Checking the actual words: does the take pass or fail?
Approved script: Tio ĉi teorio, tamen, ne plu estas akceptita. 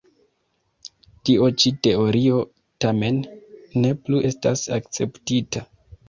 pass